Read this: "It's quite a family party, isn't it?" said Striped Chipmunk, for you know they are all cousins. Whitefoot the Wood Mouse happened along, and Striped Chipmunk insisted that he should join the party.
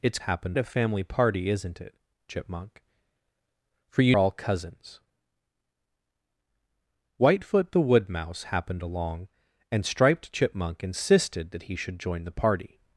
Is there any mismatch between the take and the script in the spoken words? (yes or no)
yes